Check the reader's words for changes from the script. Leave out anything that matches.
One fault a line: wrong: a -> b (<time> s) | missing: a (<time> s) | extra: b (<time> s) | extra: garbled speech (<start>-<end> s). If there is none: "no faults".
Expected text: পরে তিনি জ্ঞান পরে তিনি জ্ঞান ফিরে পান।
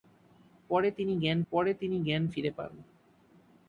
no faults